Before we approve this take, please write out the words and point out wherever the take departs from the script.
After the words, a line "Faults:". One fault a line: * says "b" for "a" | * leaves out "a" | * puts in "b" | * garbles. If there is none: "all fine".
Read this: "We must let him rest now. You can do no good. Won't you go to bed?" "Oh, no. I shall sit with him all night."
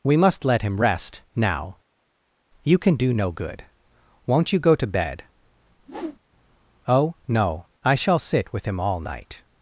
"We must let him rest now. You can do no good. Won't you go to bed?" "Oh, no. I shall sit with him all night."
Faults:
all fine